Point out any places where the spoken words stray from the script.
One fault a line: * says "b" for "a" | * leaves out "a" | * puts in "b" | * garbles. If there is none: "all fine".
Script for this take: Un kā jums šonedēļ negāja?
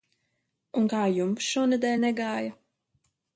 all fine